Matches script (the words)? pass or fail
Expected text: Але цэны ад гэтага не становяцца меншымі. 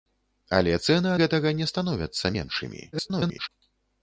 fail